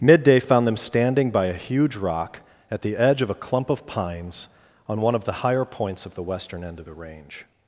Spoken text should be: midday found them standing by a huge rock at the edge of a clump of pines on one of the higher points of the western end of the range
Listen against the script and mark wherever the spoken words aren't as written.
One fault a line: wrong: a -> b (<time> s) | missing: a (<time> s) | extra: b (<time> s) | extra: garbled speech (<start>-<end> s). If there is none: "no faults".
no faults